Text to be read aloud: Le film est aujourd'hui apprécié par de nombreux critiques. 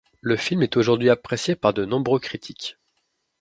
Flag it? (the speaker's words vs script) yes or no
no